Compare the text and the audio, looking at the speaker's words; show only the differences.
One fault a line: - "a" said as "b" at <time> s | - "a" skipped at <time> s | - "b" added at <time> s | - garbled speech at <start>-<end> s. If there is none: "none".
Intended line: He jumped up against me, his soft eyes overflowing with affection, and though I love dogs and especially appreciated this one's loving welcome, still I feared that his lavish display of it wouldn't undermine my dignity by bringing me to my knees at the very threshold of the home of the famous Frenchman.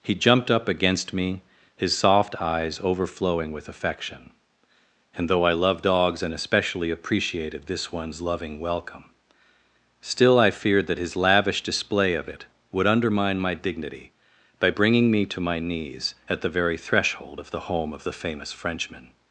- "wouldn't" said as "would" at 12.7 s